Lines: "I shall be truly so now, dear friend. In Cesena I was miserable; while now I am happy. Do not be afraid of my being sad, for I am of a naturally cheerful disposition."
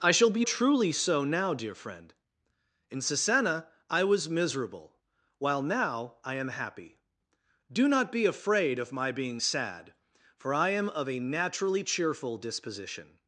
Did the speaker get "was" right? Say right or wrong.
right